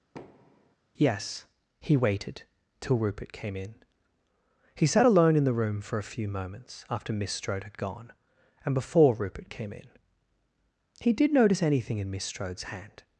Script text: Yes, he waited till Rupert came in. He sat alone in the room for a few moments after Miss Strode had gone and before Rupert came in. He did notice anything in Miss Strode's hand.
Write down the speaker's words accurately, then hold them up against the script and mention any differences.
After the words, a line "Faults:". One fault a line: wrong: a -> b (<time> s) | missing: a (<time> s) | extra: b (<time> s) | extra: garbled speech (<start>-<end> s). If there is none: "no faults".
Yes, he waited till Rupert came in. He sat alone in the room for a few moments after Miss Strode had gone and before Rupert came in. He did notice anything in Miss Strode's hand.
Faults:
no faults